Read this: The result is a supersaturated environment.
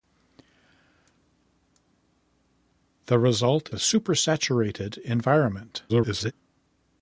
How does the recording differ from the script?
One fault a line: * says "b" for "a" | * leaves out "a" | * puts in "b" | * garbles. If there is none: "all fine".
* leaves out "is"
* garbles